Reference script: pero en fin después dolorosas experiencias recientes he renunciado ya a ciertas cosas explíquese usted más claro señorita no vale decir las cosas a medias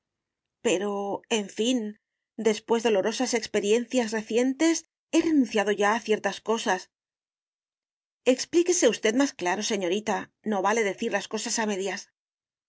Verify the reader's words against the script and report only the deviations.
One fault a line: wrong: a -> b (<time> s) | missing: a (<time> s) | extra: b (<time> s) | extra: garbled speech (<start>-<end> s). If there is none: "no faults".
no faults